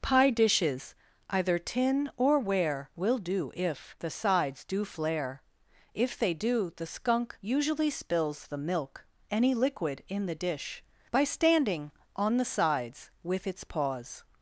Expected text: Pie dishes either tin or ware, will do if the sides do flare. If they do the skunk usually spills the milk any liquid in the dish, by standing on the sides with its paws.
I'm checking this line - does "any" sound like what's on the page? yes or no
yes